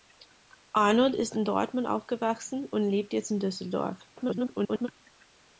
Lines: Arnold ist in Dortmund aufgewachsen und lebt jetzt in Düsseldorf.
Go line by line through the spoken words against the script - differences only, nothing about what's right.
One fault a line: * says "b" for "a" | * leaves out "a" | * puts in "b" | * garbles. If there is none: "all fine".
* garbles